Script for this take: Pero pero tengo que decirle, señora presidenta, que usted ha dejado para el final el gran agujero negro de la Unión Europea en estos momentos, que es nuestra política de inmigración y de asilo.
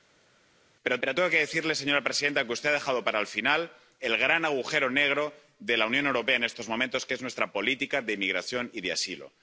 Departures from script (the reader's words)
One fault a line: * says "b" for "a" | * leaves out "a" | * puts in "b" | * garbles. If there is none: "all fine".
all fine